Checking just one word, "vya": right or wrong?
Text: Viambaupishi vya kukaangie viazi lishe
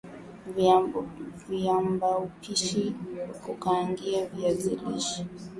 wrong